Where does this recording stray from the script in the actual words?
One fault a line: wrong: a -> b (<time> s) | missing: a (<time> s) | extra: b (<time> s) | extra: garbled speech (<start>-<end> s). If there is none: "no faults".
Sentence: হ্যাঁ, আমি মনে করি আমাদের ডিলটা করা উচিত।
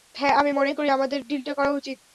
no faults